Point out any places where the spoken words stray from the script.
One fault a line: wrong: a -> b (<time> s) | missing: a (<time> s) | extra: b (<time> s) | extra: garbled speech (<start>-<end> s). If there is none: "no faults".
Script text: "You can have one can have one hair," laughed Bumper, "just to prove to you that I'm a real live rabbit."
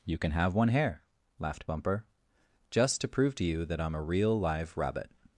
missing: can have one (0.7 s)